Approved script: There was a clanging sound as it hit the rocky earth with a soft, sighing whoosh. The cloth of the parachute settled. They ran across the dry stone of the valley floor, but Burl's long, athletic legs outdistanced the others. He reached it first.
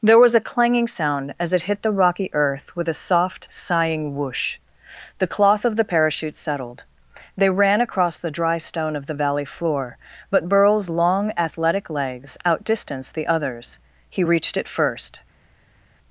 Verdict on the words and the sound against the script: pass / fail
pass